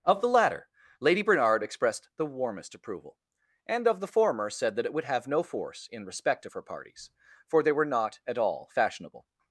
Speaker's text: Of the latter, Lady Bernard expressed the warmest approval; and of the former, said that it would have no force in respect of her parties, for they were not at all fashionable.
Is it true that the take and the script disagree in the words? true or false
false